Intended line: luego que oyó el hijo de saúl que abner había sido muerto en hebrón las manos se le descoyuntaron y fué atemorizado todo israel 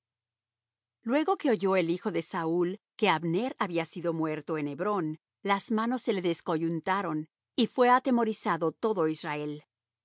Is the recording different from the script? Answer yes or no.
no